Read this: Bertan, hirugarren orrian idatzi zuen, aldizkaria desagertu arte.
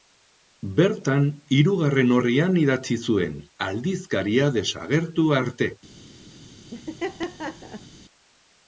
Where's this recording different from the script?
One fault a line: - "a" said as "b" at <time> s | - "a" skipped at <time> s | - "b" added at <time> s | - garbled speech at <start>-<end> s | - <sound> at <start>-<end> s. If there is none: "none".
- laugh at 6.7-7.9 s